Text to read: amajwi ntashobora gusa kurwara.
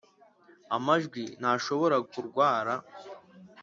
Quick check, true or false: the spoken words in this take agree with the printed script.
false